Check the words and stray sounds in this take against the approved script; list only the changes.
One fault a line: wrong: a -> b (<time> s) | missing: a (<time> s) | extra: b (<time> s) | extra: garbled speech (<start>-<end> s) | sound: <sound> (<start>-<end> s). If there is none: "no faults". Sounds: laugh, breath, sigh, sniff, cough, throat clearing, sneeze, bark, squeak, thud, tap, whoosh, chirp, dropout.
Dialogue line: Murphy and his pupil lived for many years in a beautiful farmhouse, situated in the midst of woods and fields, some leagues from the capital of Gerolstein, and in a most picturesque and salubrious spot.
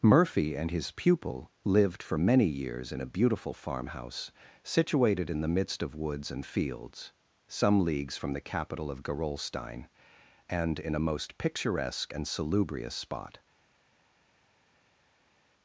no faults